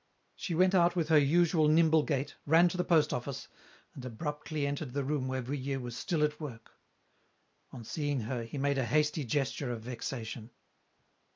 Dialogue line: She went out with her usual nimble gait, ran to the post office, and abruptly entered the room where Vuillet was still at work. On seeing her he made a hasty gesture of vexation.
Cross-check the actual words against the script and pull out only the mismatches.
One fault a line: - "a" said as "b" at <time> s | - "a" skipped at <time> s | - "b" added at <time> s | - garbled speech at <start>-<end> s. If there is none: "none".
none